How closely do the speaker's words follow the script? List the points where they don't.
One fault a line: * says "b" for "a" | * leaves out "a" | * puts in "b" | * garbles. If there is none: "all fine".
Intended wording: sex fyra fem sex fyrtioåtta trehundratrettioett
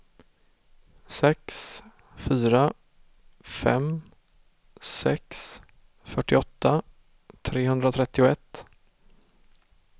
all fine